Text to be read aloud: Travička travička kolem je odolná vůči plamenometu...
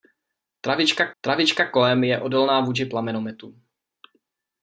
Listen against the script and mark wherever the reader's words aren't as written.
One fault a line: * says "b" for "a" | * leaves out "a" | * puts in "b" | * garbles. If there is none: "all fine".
all fine